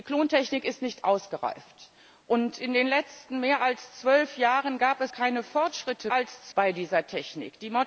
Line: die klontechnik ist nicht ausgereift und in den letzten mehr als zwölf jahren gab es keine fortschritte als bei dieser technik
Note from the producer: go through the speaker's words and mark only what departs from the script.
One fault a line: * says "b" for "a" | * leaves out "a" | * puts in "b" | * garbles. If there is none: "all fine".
all fine